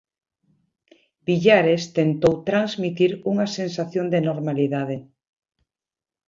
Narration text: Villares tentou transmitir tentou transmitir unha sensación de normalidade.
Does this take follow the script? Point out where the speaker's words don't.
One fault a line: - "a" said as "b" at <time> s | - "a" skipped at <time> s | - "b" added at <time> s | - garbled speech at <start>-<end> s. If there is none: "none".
- "tentou transmitir" skipped at 3.1 s